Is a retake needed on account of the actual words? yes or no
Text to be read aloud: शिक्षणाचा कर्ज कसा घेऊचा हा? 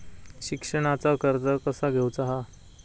no